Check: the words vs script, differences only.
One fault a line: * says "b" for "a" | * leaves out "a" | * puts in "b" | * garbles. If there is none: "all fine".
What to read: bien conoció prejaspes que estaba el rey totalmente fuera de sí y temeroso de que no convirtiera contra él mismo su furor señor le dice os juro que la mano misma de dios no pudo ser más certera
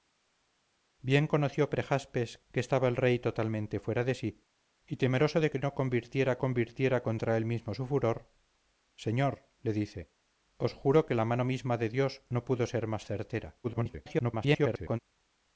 * puts in "convirtiera"
* garbles